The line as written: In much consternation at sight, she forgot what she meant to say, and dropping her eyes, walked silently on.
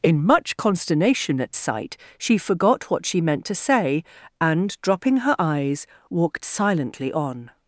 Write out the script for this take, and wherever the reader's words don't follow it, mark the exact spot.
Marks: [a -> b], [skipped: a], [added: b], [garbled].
In much consternation at sight, she forgot what she meant to say, and dropping her eyes, walked silently on.